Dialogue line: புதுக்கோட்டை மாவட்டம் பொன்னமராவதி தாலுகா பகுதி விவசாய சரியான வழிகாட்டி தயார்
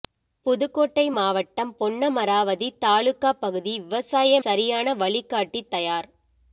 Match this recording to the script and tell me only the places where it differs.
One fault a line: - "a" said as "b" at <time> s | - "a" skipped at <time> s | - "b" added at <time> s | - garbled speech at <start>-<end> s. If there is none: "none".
none